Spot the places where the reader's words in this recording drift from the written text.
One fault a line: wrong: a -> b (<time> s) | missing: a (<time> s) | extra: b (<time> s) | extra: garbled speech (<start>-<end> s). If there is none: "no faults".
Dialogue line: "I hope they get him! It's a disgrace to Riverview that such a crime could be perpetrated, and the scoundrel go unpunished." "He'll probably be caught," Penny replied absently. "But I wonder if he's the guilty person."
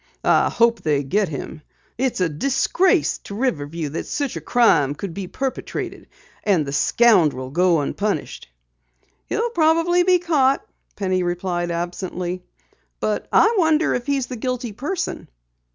no faults